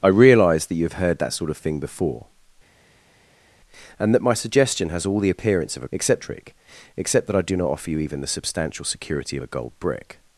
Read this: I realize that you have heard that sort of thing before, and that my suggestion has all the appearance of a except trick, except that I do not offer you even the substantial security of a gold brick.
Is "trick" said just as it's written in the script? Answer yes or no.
yes